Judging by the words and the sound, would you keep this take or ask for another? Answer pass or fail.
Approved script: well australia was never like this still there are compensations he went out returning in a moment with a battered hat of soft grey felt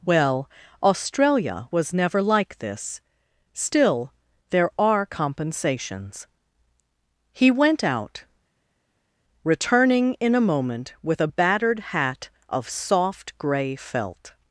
pass